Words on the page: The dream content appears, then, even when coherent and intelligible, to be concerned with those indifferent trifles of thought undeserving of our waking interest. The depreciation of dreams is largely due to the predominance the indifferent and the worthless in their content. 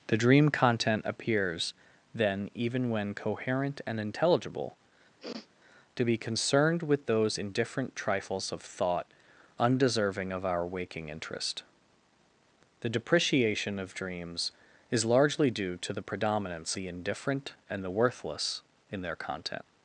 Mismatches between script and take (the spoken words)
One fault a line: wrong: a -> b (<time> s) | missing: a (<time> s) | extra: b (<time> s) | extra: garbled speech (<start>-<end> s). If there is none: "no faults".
no faults